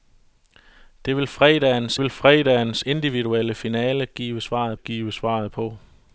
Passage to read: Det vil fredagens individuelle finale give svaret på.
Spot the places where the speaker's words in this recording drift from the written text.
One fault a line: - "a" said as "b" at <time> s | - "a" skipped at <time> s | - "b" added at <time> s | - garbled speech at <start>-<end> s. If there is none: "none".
- "vil fredagens" added at 2.0 s
- "give svaret" added at 4.7 s